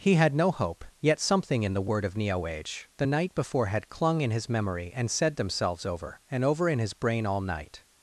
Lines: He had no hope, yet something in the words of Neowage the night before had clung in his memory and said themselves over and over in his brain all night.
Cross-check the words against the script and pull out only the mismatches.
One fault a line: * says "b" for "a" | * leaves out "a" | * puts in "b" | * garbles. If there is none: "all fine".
* says "word" for "words"